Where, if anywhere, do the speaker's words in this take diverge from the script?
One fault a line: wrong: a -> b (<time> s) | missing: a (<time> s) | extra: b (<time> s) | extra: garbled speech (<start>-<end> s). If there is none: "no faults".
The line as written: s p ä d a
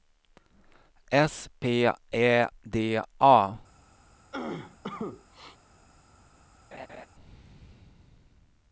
no faults